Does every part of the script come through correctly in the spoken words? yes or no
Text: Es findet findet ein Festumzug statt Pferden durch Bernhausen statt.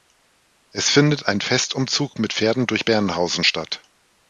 no